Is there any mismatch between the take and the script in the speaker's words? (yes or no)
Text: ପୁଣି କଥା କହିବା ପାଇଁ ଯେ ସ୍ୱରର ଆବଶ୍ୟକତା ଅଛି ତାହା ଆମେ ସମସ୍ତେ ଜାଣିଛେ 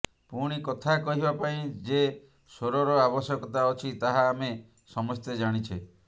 no